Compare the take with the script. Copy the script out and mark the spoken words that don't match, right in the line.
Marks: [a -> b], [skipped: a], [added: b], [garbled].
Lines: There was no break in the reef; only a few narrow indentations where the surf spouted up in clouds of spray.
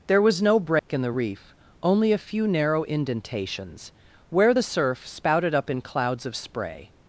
There was no break in the reef; only a few narrow indentations where the surf spouted up in clouds of spray.